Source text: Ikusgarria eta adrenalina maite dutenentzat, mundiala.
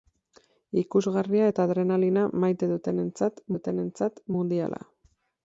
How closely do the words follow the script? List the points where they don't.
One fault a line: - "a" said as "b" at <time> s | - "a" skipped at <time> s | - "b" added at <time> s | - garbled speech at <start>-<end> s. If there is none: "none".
- "dutenentzat" added at 3.5 s